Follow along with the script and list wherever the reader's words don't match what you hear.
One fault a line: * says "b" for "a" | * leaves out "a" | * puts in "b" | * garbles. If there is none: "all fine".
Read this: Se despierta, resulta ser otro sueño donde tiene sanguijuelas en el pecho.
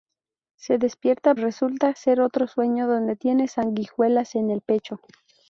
all fine